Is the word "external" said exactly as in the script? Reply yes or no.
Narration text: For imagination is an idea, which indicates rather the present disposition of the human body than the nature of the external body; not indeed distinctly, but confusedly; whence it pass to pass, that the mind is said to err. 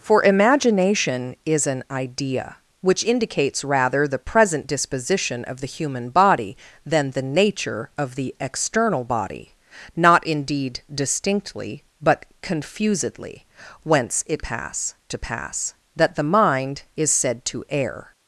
yes